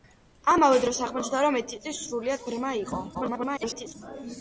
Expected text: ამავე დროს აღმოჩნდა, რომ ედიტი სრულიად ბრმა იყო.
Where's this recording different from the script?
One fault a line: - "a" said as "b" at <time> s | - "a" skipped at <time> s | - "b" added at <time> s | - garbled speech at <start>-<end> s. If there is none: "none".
- garbled speech at 3.1-3.9 s